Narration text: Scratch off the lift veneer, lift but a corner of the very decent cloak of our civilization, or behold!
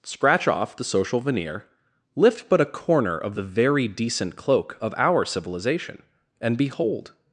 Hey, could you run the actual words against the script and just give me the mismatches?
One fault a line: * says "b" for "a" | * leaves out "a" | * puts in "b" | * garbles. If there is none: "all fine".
* says "social" for "lift"
* says "and" for "or"